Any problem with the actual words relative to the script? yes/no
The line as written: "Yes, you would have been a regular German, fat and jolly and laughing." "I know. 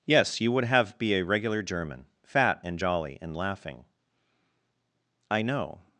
yes